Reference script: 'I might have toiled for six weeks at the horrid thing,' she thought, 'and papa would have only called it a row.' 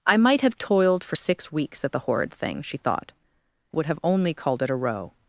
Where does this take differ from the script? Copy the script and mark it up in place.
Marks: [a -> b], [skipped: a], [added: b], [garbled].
'I might have toiled for six weeks at the horrid thing,' she thought, [skipped: 'and papa] would have only called it a row.'